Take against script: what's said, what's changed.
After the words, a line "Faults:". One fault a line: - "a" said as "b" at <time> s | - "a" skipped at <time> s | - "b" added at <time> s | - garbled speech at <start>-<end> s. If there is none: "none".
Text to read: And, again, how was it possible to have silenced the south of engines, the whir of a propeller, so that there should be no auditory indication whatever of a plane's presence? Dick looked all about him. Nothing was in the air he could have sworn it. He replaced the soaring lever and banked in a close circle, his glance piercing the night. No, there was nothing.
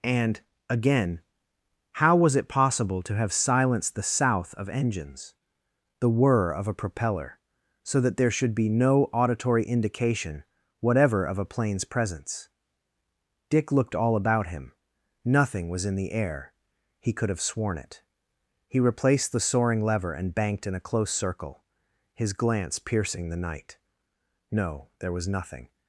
And, again, how was it possible to have silenced the south of engines, the whir of a propeller, so that there should be no auditory indication whatever of a plane's presence? Dick looked all about him. Nothing was in the air he could have sworn it. He replaced the soaring lever and banked in a close circle, his glance piercing the night. No, there was nothing.
Faults:
none